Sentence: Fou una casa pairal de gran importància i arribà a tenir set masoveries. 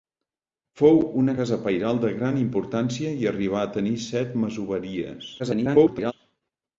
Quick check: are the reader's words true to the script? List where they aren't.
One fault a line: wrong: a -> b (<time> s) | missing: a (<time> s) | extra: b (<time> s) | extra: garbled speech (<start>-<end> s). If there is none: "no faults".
extra: garbled speech (5.4-6.1 s)